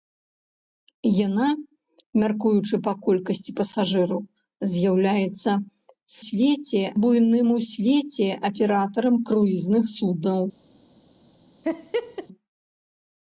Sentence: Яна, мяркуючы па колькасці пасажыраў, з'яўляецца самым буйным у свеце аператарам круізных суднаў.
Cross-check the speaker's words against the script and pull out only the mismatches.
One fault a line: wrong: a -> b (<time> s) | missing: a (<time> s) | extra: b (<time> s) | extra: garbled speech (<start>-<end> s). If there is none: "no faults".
wrong: самым -> свеце (6.3 s)